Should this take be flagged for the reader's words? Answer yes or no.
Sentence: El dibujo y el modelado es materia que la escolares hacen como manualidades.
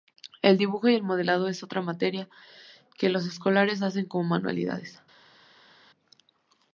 yes